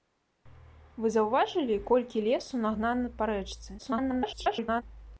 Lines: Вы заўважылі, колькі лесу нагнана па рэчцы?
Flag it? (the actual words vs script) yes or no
yes